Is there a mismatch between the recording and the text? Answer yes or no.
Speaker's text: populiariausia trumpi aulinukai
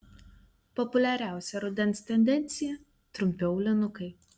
yes